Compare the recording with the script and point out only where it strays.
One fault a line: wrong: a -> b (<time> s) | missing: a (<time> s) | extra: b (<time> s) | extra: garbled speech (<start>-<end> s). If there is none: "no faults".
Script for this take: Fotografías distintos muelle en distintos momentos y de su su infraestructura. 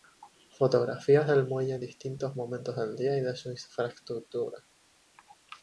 wrong: distintos -> del (1.3 s)
extra: del día (2.7 s)
missing: su (3.5 s)